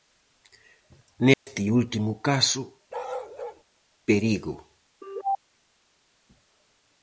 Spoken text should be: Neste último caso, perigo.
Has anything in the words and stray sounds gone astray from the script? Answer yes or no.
yes